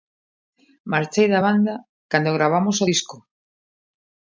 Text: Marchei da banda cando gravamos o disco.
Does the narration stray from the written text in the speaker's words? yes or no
no